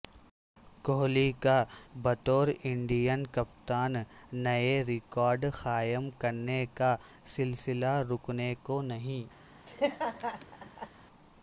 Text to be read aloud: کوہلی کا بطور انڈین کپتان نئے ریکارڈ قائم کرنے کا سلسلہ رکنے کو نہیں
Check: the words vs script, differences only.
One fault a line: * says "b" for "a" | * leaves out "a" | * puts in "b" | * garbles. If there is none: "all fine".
all fine